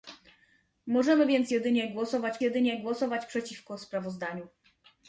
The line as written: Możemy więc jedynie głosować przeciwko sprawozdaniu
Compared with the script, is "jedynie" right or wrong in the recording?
right